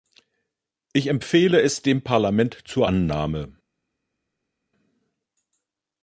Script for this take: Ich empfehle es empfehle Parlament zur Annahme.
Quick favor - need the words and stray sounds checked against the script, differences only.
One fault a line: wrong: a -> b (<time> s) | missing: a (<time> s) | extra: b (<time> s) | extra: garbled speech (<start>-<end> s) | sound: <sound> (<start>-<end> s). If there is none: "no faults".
wrong: empfehle -> dem (1.8 s)